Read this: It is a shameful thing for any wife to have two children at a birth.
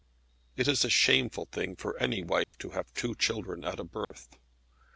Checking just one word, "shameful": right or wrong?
right